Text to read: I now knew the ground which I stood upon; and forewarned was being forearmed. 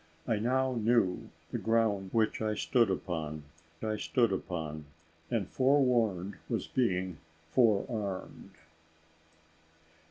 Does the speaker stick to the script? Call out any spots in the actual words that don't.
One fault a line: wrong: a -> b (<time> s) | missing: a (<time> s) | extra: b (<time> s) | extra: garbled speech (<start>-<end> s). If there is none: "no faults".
extra: I stood upon (3.8 s)